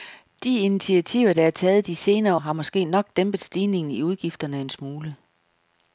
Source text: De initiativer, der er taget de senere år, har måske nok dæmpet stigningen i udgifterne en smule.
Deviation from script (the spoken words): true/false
true